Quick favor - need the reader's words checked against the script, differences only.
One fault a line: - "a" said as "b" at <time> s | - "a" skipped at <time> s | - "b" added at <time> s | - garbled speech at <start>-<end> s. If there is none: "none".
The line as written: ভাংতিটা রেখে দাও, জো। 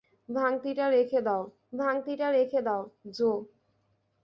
- "ভাংতিটা রেখে দাও" added at 1.7 s